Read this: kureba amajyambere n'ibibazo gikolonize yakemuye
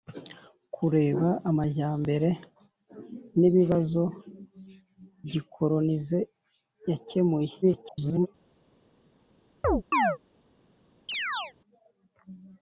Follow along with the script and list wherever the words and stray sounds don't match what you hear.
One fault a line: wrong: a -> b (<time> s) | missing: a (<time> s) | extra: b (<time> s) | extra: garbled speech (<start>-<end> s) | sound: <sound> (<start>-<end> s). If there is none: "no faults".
extra: garbled speech (7.6-8.3 s)
sound: chirp (9.6-10.2 s)
sound: chirp (11.1-11.5 s)